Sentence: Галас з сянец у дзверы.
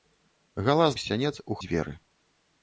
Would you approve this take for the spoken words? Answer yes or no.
yes